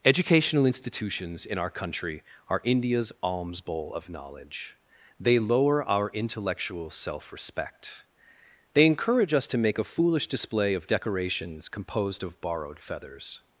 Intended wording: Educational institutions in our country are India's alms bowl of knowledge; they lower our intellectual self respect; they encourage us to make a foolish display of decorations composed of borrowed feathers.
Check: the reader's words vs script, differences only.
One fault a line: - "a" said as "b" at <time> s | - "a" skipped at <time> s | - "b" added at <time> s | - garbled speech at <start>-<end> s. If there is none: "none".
none